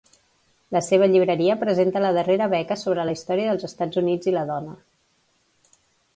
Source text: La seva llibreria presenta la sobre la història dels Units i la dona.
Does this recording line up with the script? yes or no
no